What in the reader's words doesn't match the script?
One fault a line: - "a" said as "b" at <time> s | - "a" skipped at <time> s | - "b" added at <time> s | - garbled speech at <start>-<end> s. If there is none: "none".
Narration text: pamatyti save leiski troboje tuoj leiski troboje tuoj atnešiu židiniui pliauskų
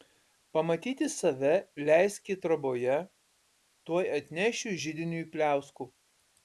- "leiski troboje tuoj" skipped at 4.0 s